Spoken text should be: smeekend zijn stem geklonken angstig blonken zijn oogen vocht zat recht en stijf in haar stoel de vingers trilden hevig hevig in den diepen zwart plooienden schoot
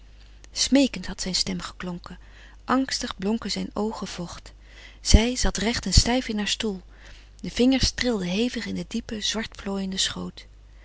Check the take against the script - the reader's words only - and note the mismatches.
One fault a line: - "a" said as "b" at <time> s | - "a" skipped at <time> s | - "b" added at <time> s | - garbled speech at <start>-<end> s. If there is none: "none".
- "had" added at 1.1 s
- "zij" added at 5.0 s
- "hevig" skipped at 8.7 s